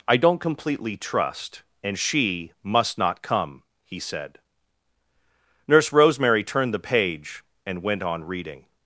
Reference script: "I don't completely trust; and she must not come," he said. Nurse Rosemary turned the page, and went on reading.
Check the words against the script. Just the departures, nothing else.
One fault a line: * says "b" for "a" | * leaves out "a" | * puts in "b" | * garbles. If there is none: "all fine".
all fine